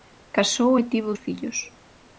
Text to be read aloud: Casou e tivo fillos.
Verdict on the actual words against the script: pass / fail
pass